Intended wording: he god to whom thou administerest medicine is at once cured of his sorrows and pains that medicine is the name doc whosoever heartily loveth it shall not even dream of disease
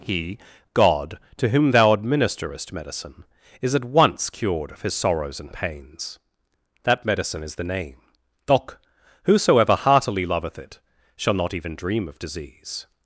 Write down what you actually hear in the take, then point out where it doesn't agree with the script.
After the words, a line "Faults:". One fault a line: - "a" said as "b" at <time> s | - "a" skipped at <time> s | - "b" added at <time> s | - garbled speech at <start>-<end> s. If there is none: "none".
he god to whom thou administerest medicine is at once cured of his sorrows and pains that medicine is the name doc whosoever heartily loveth it shall not even dream of disease
Faults:
none